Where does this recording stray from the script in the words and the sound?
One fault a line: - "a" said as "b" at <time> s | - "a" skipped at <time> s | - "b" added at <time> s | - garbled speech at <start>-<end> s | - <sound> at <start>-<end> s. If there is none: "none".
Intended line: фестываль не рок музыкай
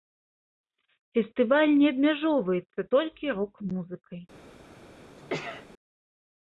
- "абмяжоўваецца толькі" added at 1.9 s
- sneeze at 5.2-5.7 s